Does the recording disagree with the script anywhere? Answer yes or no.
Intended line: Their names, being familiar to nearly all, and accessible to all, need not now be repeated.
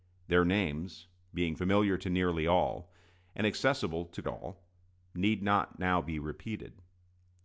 no